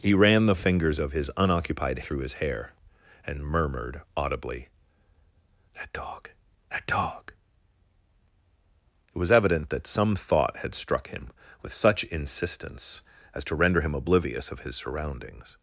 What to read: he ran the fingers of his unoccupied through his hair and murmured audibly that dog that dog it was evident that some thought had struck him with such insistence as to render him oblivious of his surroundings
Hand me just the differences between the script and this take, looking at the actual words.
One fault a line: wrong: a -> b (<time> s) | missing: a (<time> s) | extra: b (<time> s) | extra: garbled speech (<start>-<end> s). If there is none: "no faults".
no faults